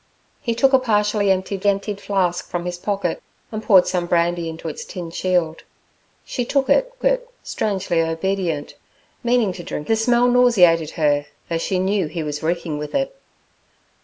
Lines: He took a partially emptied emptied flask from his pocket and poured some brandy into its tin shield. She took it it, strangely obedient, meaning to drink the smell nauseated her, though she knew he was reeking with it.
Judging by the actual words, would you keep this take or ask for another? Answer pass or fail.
pass